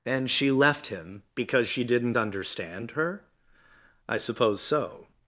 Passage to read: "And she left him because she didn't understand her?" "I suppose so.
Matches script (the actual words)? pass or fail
pass